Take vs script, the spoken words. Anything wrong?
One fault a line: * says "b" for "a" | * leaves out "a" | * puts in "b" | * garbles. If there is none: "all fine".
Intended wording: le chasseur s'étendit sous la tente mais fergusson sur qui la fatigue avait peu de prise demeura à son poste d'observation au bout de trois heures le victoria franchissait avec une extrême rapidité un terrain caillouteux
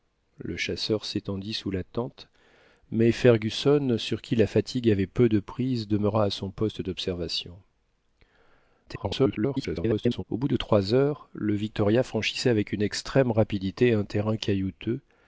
* garbles